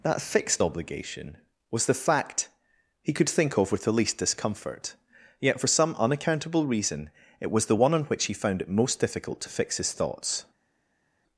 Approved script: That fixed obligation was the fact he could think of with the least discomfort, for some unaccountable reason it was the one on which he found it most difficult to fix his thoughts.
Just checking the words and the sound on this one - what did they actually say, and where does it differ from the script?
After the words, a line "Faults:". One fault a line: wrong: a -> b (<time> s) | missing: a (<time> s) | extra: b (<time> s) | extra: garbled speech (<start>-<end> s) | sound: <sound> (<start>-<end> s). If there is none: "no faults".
That fixed obligation was the fact he could think of with the least discomfort, yet for some unaccountable reason it was the one on which he found it most difficult to fix his thoughts.
Faults:
extra: yet (5.4 s)